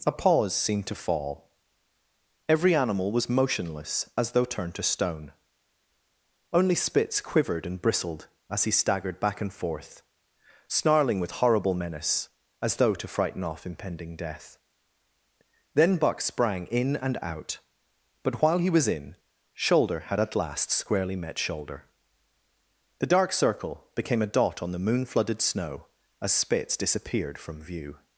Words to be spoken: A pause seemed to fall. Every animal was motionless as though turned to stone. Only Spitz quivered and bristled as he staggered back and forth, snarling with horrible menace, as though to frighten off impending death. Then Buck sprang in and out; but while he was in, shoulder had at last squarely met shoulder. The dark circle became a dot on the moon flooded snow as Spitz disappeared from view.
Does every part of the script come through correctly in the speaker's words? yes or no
yes